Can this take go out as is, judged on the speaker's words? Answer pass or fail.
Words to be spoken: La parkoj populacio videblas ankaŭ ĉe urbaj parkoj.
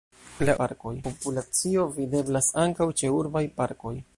pass